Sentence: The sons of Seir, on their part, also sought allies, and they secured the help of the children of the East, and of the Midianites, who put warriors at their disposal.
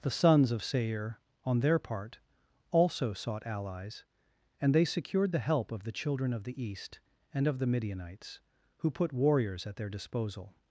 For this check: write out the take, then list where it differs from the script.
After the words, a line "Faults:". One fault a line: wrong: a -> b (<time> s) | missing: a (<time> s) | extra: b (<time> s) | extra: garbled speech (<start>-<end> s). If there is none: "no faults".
The sons of Seir, on their part, also sought allies, and they secured the help of the children of the East, and of the Midianites, who put warriors at their disposal.
Faults:
no faults